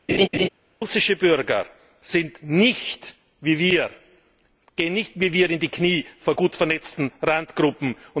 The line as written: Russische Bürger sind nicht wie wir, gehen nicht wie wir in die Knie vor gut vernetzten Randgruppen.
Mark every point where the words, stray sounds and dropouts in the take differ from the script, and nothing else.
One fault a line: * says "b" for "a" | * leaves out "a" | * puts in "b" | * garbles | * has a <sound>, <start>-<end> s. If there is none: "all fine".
* has a laugh, 0.1-0.5 s